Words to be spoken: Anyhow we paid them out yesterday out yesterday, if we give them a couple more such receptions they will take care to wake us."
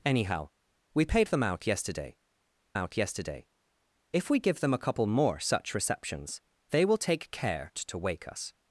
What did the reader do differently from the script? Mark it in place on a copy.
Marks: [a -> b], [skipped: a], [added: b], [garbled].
Anyhow we paid them out yesterday out yesterday, if we give them a couple more such receptions they will take care to wake us."